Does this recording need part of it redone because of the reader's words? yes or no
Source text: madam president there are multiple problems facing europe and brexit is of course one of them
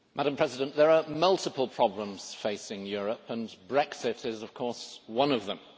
no